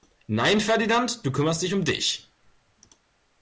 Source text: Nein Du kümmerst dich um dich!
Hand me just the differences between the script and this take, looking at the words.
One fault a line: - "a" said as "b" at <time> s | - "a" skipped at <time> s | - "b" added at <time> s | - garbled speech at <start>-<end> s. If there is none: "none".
- "Ferdinand" added at 0.6 s